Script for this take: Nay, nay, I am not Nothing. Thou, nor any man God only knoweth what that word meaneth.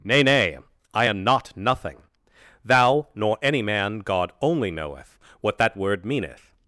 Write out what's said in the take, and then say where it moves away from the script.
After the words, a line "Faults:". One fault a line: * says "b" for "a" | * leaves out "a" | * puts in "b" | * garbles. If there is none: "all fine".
Nay, nay, I am not Nothing. Thou, nor any man God only knoweth what that word meaneth.
Faults:
all fine